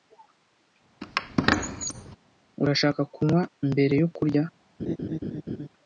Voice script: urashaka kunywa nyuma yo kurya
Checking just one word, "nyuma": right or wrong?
wrong